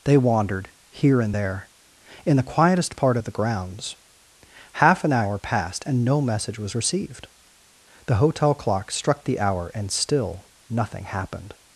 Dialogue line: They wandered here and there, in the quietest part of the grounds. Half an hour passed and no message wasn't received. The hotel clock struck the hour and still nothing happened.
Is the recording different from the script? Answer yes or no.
yes